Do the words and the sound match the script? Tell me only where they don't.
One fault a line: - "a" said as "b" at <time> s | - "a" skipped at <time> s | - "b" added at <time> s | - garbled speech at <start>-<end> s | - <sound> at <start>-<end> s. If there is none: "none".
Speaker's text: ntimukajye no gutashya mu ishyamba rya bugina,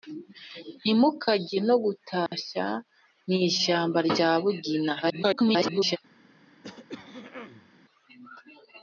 - dropout at 2.3-2.3 s
- garbled speech at 5.0-6.0 s
- throat clearing at 6.6-7.7 s